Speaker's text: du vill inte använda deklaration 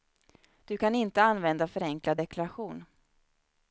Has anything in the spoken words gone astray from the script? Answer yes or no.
yes